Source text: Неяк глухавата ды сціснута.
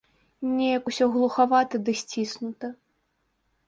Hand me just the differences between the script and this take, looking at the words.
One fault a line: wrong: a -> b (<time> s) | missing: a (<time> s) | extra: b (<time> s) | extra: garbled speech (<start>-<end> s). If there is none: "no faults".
extra: усё (0.9 s)